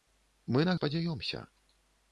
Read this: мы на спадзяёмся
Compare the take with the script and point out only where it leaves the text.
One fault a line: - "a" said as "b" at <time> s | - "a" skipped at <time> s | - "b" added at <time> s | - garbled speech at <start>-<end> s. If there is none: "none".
none